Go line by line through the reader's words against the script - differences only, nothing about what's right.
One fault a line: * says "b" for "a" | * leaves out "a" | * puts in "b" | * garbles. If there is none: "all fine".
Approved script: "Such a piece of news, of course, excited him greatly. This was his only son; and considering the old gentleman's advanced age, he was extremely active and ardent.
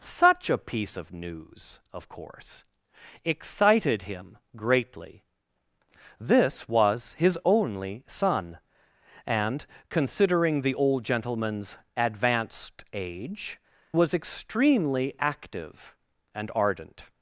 * leaves out "he"